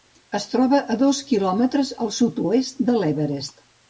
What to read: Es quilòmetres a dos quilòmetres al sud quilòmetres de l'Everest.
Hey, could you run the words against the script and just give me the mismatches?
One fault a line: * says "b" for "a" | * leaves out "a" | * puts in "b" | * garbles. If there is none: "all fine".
* says "troba" for "quilòmetres"
* says "oest" for "quilòmetres"